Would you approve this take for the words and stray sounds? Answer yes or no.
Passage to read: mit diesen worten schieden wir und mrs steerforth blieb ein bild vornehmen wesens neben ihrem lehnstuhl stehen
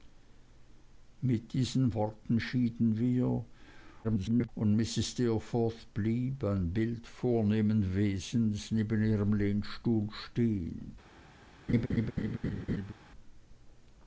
no